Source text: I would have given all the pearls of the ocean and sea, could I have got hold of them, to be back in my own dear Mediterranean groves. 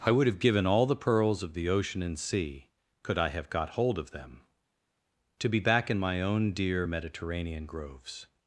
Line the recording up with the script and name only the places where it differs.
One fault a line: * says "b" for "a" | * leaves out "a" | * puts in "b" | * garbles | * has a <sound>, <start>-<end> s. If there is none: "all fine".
all fine